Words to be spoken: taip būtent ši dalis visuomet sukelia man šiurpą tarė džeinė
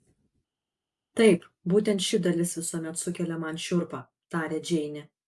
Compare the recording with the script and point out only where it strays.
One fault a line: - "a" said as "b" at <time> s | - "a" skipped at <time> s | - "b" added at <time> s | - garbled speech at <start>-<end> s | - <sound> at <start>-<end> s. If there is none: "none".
none